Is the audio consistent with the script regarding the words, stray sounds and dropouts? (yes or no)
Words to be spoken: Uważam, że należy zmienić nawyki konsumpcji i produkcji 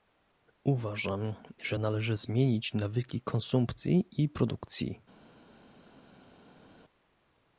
yes